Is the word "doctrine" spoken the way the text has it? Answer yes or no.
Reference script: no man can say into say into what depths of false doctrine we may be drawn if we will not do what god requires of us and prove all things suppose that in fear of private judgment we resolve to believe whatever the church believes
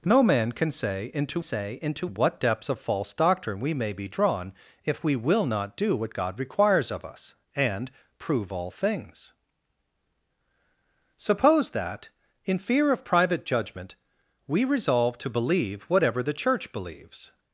yes